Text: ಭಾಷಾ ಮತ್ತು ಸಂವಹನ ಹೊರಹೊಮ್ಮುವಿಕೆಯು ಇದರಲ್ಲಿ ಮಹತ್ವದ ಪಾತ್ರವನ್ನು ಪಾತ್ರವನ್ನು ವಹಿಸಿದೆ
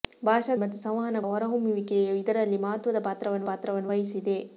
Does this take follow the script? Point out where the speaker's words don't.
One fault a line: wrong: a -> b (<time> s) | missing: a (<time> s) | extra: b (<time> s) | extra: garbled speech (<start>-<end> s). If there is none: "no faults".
no faults